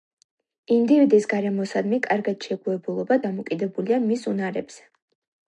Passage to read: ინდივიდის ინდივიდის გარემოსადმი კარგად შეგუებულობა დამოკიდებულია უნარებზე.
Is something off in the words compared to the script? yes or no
yes